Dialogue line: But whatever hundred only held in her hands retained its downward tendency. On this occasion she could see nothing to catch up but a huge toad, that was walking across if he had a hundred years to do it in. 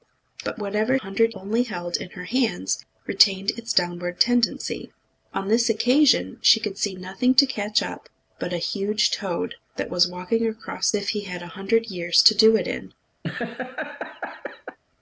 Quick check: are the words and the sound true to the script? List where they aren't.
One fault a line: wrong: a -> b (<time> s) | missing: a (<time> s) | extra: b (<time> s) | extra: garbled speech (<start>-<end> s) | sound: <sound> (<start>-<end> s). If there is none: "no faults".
sound: laugh (13.2-14.8 s)